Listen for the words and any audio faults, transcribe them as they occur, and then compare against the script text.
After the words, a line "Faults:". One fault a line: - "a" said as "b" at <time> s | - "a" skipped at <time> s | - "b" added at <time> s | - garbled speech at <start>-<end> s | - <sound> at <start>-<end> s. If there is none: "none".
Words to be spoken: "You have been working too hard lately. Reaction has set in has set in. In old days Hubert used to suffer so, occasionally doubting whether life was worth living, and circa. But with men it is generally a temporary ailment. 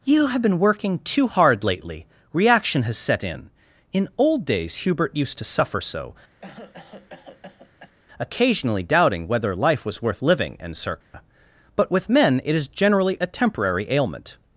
"You have been working too hard lately. Reaction has set in. In old days Hubert used to suffer so, occasionally doubting whether life was worth living, and circa. But with men it is generally a temporary ailment.
Faults:
- "has set in" skipped at 3.5 s
- cough at 6.4-7.9 s
- dropout at 11.0-11.1 s